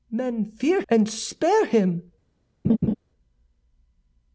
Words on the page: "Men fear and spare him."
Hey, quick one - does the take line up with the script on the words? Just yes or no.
yes